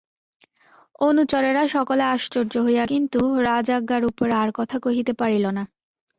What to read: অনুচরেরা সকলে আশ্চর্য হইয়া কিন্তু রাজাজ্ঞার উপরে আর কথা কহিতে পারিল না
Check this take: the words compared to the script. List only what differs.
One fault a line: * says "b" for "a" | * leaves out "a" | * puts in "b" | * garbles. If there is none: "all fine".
all fine